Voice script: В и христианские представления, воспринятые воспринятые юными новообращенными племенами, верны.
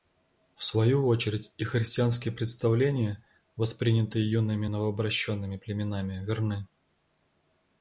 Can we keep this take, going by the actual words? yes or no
no